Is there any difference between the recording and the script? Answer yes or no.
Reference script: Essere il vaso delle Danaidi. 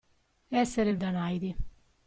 yes